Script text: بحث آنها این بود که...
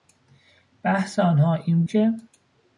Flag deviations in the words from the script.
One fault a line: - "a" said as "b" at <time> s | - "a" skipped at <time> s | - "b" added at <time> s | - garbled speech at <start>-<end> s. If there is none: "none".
- "بود" skipped at 1.8 s